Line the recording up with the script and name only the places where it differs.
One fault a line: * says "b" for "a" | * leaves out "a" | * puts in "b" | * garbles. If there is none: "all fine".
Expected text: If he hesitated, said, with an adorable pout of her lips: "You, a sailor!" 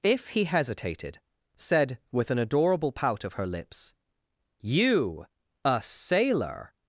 all fine